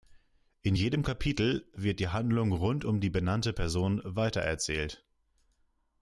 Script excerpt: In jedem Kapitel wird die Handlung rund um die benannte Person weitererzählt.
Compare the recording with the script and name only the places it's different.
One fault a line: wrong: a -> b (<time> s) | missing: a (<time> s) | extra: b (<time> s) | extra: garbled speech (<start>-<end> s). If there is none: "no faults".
no faults